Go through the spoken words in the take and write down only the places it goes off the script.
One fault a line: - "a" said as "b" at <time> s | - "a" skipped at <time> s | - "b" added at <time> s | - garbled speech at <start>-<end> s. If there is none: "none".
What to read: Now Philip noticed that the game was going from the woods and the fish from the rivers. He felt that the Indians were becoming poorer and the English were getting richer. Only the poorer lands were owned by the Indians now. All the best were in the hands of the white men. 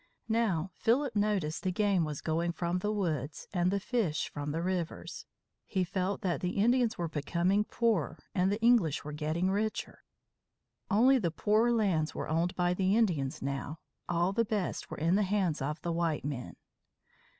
- "that" skipped at 1.6 s